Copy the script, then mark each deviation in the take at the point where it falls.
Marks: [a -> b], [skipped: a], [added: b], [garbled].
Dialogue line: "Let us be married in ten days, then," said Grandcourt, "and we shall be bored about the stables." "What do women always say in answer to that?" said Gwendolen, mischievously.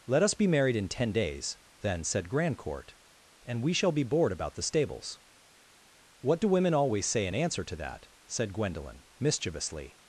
"Let us be married in ten days, then," said Grandcourt, "and we shall be bored about the stables." "What do women always say in answer to that?" said Gwendolen, mischievously.